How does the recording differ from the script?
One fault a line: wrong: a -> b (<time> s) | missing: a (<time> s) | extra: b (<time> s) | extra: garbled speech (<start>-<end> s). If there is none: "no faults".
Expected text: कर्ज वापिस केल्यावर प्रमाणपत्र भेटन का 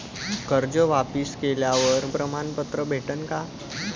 no faults